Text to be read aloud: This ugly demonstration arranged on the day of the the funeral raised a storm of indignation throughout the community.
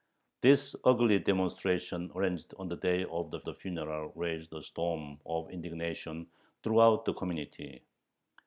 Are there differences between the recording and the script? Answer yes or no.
no